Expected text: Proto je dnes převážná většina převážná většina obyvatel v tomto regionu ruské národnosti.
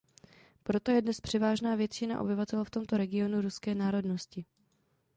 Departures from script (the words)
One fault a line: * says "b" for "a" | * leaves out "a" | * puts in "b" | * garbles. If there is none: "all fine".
* leaves out "převážná většina"